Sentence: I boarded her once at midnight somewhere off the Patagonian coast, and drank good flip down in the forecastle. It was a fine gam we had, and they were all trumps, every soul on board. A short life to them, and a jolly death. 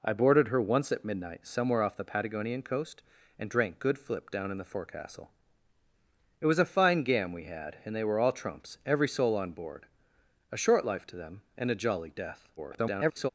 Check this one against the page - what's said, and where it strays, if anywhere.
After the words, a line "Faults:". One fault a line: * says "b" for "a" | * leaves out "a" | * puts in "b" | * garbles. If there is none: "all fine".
I boarded her once at midnight somewhere off the Patagonian coast, and drank good flip down in the forecastle. It was a fine gam we had, and they were all trumps, every soul on board. A short life to them, and a jolly death. [garbled]
Faults:
* garbles